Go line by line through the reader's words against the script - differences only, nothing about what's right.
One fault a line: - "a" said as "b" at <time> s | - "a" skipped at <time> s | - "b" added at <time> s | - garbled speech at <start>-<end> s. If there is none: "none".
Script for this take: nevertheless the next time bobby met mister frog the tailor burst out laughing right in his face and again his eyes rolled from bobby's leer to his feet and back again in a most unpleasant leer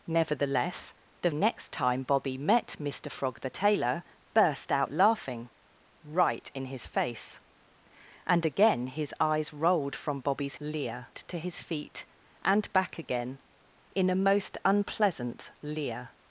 none